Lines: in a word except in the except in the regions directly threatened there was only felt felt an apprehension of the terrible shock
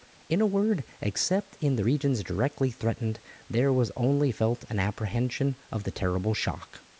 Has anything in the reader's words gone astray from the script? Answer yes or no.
yes